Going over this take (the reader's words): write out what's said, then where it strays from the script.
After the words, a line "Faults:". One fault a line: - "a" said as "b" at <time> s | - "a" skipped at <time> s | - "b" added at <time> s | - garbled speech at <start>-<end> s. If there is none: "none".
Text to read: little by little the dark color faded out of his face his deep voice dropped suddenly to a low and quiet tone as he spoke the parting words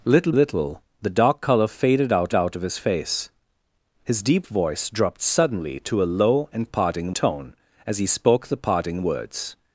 little little the dark color faded out out of his face his deep voice dropped suddenly to a low and parting tone as he spoke the parting words
Faults:
- "by" skipped at 0.3 s
- "out" added at 2.3 s
- "quiet" said as "parting" at 6.7 s